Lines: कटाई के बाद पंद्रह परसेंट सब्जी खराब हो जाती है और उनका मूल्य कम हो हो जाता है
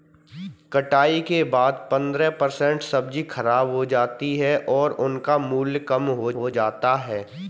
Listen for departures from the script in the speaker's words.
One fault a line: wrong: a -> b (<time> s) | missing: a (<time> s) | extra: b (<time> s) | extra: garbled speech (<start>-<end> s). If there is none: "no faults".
no faults